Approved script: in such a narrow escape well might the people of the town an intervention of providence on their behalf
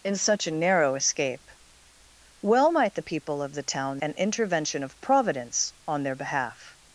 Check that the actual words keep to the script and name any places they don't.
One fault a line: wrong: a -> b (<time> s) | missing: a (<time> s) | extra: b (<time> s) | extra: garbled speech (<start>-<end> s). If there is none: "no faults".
no faults